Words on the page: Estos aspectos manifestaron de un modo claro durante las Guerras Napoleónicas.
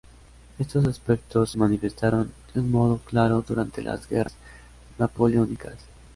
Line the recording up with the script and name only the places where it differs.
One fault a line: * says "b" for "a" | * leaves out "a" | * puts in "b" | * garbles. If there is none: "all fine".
all fine